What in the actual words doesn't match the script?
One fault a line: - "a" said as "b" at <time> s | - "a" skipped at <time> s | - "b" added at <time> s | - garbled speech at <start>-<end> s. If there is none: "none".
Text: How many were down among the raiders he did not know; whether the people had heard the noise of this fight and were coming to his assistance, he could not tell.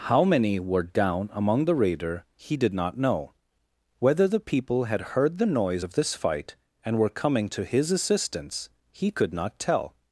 - "raiders" said as "raider" at 1.8 s